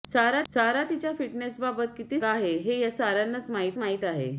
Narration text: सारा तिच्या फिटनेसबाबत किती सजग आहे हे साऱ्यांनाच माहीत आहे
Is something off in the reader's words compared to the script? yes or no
yes